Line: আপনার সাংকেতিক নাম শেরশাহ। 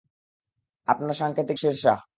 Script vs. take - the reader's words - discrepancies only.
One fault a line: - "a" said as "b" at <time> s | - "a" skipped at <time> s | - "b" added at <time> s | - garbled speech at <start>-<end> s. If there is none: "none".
- "নাম" skipped at 1.6 s